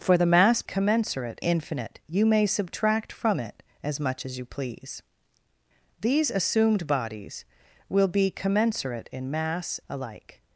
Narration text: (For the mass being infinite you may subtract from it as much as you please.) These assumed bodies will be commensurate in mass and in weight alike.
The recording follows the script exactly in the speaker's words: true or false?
false